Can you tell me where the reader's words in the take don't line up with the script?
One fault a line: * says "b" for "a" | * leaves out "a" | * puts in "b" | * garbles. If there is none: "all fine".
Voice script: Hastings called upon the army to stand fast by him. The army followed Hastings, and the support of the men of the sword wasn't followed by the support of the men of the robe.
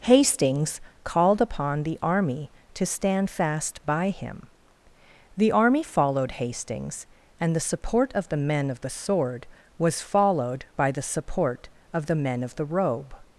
* says "was" for "wasn't"